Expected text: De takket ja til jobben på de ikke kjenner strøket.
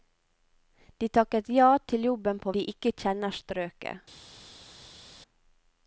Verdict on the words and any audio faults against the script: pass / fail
pass